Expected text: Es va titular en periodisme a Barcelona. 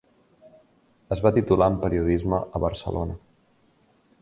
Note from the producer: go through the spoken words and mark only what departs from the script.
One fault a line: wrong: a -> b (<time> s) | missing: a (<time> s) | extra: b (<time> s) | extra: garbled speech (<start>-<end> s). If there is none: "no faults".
no faults